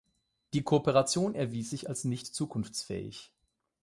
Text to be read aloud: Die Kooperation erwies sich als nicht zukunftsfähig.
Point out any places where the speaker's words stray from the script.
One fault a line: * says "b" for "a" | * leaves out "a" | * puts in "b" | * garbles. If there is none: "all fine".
all fine